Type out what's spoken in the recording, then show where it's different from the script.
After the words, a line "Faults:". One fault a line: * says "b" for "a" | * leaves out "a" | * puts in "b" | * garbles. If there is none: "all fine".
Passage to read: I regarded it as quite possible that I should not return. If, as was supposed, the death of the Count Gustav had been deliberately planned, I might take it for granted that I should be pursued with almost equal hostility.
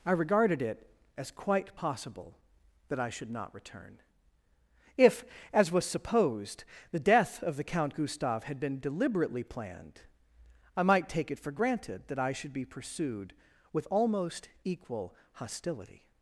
I regarded it as quite possible that I should not return. If, as was supposed, the death of the Count Gustav had been deliberately planned, I might take it for granted that I should be pursued with almost equal hostility.
Faults:
all fine